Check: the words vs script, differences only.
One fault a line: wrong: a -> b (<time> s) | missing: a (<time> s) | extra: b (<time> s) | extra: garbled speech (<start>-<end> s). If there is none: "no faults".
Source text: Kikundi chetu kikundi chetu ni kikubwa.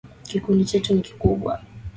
missing: kikundi chetu (0.9 s)